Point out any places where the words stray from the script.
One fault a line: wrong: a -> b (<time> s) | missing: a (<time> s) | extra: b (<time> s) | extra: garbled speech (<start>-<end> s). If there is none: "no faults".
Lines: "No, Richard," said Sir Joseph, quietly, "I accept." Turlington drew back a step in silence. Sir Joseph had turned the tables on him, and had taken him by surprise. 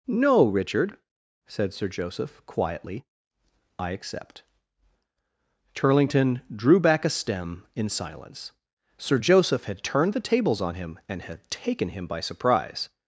wrong: step -> stem (7.1 s)